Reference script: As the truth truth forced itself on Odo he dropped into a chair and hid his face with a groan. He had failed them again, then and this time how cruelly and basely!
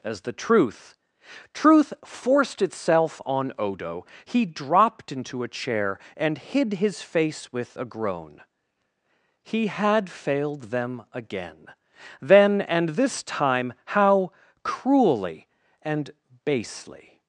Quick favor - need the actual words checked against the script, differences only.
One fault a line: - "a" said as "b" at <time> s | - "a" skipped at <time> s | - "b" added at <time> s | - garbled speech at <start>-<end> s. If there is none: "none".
none